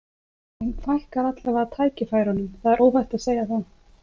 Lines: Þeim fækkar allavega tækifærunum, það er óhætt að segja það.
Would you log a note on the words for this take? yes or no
no